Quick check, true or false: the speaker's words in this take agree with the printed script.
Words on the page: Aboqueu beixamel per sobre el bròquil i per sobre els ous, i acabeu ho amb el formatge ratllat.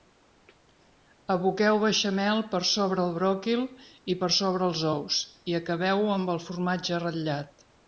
true